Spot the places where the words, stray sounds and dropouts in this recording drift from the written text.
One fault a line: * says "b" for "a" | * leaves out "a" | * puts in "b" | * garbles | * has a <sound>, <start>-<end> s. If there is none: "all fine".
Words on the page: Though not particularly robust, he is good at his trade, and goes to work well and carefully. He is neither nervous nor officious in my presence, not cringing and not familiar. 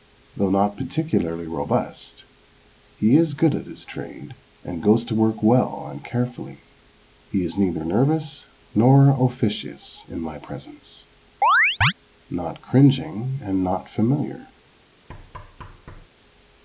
* has a chirp, 11.4-11.9 s
* has a thud, 15.1-16.1 s